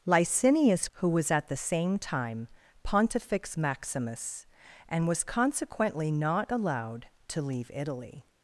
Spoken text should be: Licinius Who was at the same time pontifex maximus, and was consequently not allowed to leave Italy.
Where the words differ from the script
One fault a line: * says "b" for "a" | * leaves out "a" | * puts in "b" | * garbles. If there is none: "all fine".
all fine